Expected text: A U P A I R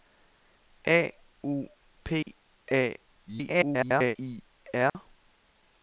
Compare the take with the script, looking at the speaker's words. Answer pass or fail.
fail